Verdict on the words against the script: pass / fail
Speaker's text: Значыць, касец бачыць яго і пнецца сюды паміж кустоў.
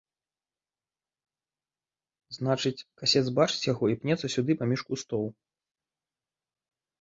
pass